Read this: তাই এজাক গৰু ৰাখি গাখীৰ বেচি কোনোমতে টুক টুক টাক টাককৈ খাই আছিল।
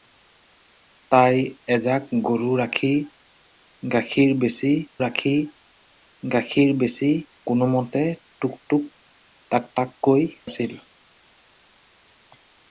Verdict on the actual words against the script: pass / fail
fail